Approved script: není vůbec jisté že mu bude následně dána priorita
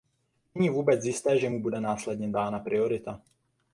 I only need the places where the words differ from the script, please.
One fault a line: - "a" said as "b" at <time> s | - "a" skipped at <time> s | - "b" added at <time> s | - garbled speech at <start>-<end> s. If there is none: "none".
none